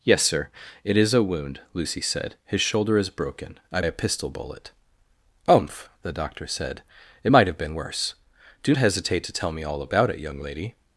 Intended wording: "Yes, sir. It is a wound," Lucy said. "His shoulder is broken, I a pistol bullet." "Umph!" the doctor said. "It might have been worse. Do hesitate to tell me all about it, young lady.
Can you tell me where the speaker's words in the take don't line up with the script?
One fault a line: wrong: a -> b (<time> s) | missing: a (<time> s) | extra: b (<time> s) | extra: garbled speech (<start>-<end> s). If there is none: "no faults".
no faults